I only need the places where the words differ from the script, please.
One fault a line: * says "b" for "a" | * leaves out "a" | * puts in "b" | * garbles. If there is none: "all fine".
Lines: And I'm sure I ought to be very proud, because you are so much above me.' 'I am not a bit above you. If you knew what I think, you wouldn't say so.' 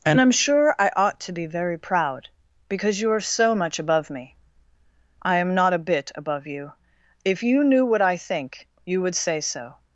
* says "would" for "wouldn't"